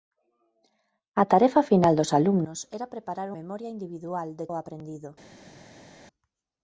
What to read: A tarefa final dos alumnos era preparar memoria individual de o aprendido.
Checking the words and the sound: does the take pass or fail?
pass